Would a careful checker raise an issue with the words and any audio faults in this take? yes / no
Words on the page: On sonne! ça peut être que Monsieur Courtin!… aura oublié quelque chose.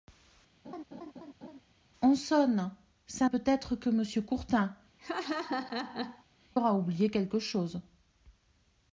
yes